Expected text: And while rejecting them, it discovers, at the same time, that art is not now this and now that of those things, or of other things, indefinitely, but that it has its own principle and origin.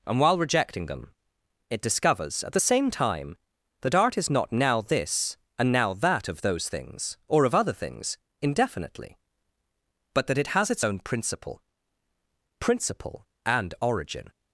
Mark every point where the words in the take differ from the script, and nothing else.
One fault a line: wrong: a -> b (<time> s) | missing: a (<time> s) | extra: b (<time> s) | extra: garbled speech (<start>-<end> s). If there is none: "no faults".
extra: principle (12.6 s)